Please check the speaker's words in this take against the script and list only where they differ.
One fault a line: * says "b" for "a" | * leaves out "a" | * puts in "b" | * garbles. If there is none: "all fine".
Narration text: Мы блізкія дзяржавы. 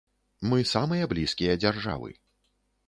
* puts in "самыя"